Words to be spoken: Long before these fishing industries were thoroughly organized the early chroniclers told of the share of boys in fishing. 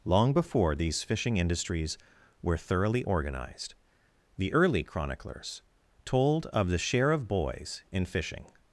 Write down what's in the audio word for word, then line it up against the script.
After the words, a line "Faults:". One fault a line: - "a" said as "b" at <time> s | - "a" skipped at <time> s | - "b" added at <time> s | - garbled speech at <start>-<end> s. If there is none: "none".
Long before these fishing industries were thoroughly organized the early chroniclers told of the share of boys in fishing.
Faults:
none